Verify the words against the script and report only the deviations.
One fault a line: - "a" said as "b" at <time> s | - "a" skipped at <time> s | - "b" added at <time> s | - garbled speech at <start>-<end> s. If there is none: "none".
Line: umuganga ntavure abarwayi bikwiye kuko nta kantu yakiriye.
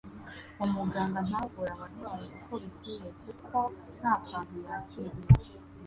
- "uko" added at 2.4 s